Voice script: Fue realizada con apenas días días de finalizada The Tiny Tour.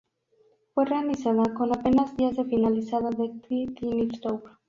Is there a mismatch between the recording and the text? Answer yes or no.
yes